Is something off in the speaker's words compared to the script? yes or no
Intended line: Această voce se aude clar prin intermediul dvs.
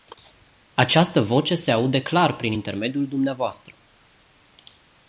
no